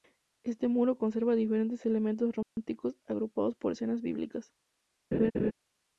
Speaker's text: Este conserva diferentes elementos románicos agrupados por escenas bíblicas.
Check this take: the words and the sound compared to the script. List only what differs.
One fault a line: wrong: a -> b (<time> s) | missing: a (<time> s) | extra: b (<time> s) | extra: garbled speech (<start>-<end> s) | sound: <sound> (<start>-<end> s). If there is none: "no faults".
extra: muro (0.7 s)
sound: dropout (2.4-2.6 s)
sound: laugh (5.1-5.5 s)